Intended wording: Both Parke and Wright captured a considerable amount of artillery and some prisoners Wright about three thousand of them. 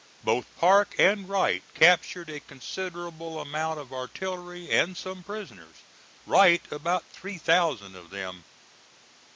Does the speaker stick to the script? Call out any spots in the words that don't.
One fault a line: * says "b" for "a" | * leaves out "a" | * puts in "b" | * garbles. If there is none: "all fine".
all fine